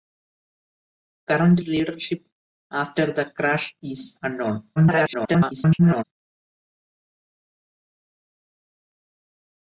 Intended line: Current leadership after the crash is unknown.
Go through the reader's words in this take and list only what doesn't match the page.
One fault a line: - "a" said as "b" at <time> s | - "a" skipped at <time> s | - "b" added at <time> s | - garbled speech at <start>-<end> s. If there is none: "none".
- garbled speech at 4.8-6.0 s